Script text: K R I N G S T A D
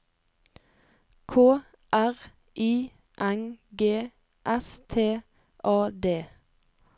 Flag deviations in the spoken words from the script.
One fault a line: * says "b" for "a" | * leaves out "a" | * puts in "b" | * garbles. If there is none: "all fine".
all fine